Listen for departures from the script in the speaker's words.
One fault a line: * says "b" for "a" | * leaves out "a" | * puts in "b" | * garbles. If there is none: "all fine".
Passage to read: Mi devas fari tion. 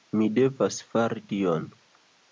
all fine